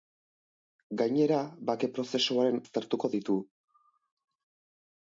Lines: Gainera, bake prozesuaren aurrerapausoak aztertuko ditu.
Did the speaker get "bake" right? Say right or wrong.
right